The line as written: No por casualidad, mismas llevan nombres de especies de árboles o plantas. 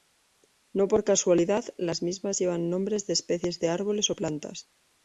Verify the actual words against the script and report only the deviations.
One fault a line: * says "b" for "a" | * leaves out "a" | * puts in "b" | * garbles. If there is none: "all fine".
* puts in "las"